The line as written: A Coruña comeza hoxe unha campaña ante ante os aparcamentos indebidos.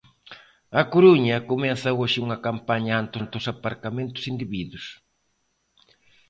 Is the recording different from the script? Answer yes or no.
no